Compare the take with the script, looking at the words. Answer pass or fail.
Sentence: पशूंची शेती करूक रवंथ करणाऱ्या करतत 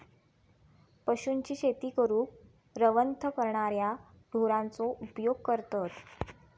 fail